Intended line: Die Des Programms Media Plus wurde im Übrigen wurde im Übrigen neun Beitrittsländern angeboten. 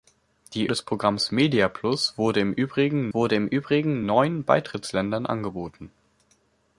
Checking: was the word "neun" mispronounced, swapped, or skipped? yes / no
no